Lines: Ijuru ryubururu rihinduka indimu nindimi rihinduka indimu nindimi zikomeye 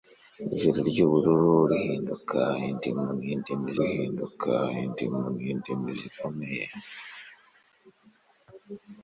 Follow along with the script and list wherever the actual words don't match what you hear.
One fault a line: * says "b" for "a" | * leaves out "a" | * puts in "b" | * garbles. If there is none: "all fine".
all fine